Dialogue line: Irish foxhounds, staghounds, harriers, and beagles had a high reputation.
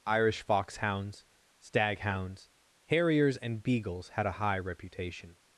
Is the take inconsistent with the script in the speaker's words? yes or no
no